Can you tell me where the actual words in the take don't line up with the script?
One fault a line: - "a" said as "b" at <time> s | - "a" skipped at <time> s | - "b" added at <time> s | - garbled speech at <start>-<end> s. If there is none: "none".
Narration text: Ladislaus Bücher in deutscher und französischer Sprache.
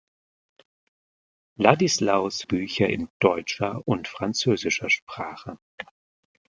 none